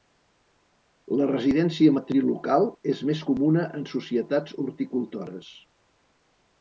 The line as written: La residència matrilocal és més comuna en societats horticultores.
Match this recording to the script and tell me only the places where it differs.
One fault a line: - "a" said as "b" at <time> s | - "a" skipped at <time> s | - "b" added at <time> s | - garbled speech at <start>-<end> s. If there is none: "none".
none